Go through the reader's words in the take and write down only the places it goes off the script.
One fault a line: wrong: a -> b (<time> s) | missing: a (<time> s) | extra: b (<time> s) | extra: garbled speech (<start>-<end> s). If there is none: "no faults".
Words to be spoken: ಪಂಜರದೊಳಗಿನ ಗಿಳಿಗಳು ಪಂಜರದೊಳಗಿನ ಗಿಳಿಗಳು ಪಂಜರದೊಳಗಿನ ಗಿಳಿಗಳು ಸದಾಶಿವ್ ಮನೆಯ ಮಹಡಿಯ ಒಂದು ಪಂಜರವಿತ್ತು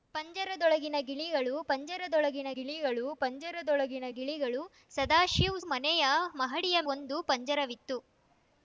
no faults